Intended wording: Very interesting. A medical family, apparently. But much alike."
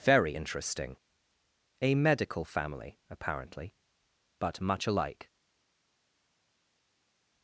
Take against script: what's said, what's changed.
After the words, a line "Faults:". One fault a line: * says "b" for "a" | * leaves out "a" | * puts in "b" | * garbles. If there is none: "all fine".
Very interesting. A medical family, apparently. But much alike."
Faults:
all fine